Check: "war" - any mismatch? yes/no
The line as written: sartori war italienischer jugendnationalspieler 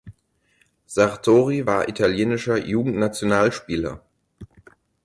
no